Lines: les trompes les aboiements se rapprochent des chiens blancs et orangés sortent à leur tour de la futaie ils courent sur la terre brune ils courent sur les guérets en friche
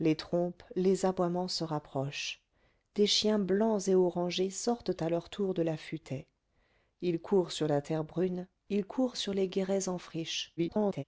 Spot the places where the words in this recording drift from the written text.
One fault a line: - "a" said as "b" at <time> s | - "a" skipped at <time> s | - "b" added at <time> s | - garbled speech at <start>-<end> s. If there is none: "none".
- garbled speech at 10.6-11.0 s